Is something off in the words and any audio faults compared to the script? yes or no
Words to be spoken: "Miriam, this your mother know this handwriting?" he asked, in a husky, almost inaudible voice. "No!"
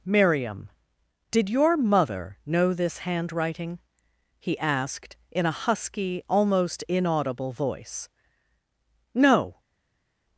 yes